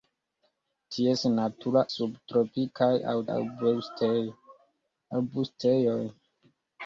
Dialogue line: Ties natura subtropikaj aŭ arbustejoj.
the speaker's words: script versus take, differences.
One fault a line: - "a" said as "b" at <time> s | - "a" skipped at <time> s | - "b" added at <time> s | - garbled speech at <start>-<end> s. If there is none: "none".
none